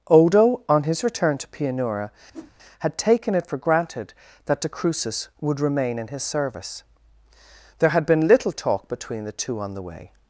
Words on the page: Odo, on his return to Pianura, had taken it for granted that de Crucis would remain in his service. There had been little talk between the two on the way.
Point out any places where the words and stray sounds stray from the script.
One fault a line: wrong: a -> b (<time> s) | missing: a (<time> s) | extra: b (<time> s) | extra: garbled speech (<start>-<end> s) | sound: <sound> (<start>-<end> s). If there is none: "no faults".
sound: whoosh (2.3-2.5 s)